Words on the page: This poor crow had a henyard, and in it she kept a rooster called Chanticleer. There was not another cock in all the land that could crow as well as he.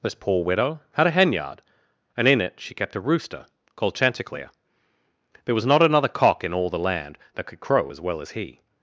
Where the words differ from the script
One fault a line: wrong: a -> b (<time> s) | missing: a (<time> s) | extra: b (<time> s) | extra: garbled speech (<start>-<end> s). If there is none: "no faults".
wrong: crow -> widow (0.4 s)